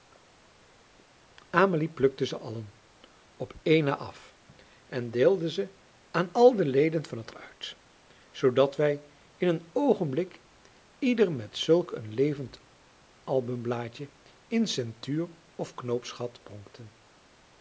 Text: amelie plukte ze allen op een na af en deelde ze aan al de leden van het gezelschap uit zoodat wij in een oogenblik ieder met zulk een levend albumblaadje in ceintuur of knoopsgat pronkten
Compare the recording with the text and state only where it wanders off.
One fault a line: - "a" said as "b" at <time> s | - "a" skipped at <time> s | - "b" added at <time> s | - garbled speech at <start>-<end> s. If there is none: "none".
- "gezelschap" skipped at 7.3 s